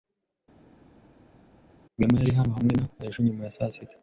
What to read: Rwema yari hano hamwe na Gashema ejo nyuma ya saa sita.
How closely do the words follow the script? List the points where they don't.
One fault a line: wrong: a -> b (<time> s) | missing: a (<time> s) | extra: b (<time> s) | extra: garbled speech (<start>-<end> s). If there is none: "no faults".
missing: Gashema (2.8 s)